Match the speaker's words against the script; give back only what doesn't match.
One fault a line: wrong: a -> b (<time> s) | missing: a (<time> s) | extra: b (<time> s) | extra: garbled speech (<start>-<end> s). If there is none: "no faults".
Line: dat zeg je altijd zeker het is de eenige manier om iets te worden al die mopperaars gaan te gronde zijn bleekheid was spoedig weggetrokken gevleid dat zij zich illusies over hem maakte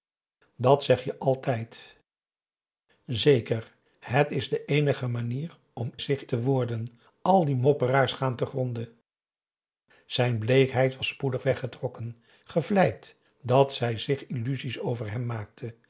wrong: iets -> zich (6.0 s)